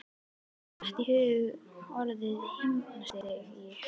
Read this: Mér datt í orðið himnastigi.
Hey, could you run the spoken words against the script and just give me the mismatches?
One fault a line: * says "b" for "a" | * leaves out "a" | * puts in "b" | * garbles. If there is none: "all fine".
* puts in "hug"